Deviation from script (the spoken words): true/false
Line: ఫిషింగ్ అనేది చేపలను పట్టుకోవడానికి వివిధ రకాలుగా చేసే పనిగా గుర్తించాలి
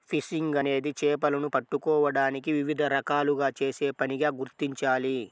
false